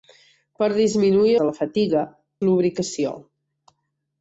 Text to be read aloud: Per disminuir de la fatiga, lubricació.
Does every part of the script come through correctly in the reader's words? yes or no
yes